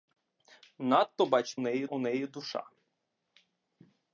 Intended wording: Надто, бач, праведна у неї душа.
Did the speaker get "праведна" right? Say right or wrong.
wrong